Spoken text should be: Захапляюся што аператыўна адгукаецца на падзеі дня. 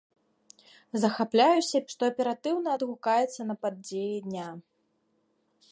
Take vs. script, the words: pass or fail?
pass